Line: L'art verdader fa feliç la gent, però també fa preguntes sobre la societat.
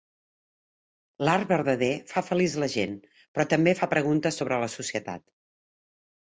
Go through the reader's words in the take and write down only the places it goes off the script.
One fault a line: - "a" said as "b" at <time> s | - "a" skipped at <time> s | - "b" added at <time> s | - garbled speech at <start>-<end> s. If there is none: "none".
none